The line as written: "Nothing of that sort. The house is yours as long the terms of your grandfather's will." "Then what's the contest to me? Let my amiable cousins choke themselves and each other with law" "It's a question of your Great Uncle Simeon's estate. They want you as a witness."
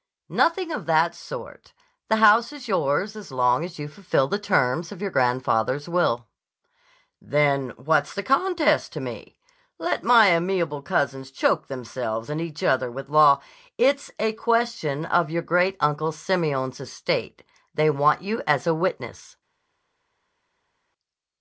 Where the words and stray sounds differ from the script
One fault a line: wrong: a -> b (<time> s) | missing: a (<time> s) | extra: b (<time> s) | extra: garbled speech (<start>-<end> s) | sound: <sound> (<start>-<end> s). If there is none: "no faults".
extra: as you fulfill (3.6 s)